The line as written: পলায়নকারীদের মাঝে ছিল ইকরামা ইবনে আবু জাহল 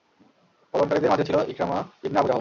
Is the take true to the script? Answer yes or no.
yes